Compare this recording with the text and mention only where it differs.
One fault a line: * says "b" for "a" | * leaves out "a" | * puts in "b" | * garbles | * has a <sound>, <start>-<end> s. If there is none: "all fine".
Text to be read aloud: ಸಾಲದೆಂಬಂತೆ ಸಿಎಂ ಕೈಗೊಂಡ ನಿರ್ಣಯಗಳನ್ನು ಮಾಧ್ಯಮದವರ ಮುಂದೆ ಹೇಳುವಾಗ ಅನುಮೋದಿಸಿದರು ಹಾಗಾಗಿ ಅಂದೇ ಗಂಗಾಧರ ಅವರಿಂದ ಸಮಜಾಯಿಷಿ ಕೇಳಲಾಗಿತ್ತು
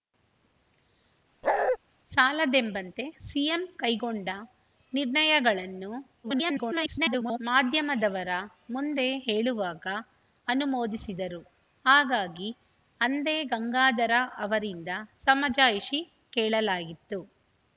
* has a bark, 1.4-1.8 s
* garbles